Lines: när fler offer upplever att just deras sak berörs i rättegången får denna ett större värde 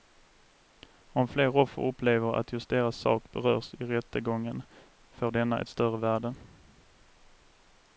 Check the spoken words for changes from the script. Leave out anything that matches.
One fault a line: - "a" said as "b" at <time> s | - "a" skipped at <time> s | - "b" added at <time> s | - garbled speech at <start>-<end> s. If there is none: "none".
- "när" said as "om" at 1.1 s